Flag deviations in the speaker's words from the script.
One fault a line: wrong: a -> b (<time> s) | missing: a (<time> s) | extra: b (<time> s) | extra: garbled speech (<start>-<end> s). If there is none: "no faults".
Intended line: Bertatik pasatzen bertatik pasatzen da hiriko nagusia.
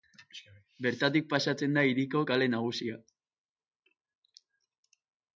missing: bertatik pasatzen (1.8 s)
extra: kale (2.3 s)